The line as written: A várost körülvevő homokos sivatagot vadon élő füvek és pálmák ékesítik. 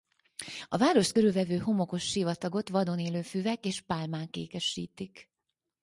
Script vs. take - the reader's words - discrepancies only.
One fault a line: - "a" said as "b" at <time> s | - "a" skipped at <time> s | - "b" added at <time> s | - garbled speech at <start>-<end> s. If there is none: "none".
none